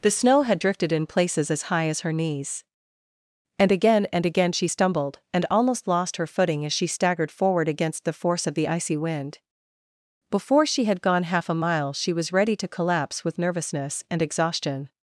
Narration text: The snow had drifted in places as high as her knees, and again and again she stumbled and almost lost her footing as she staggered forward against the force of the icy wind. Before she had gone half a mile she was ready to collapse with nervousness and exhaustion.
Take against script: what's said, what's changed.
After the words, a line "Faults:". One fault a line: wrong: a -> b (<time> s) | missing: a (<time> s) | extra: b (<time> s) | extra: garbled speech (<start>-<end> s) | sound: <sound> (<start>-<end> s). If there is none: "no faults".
The snow had drifted in places as high as her knees, and again and again she stumbled and almost lost her footing as she staggered forward against the force of the icy wind. Before she had gone half a mile she was ready to collapse with nervousness and exhaustion.
Faults:
no faults